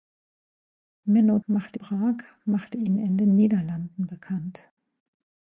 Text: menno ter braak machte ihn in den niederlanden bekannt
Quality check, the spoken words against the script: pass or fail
fail